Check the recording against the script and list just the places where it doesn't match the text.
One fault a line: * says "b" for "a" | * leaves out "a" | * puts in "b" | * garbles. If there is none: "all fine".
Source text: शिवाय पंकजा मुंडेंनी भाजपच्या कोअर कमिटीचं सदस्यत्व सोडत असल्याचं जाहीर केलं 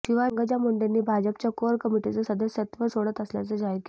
all fine